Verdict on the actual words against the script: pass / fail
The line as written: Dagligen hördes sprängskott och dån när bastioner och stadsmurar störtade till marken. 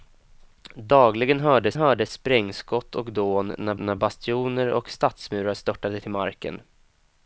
fail